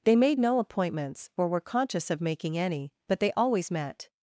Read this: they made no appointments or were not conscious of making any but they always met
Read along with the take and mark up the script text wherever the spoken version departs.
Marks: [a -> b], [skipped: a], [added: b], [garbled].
they made no appointments or were [skipped: not] conscious of making any but they always met